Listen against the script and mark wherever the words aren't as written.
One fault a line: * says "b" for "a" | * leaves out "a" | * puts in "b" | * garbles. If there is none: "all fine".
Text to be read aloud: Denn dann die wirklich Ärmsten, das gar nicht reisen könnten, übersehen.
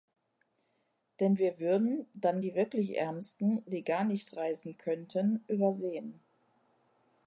* puts in "wir würden"
* says "die" for "das"